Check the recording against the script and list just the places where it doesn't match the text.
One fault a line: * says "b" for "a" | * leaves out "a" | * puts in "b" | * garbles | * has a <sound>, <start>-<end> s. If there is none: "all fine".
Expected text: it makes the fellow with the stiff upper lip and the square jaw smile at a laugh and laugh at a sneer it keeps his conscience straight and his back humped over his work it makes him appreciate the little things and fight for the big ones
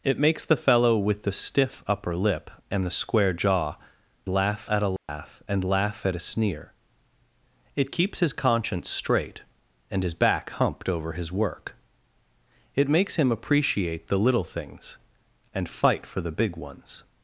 * says "laugh" for "smile"
* has a dropout, 5.0-5.1 s